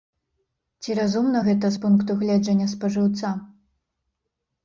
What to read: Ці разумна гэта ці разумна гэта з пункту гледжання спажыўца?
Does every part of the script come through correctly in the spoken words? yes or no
no